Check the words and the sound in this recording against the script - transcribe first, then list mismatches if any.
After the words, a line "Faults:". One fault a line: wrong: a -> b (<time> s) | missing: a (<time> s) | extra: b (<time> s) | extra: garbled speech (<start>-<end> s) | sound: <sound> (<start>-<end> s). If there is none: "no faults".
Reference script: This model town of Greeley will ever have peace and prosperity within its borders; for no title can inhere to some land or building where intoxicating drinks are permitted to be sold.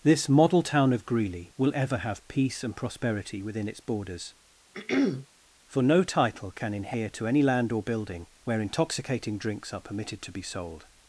This model town of Greeley will ever have peace and prosperity within its borders; for no title can inhere to any land or building where intoxicating drinks are permitted to be sold.
Faults:
sound: throat clearing (4.7-5.3 s)
wrong: some -> any (7.3 s)